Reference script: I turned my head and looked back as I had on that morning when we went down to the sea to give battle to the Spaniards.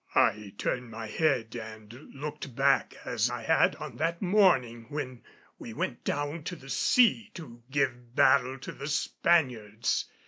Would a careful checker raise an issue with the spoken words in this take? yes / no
no